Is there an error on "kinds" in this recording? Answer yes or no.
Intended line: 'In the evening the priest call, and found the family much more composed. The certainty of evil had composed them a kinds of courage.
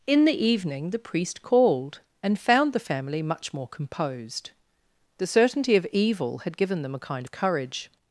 yes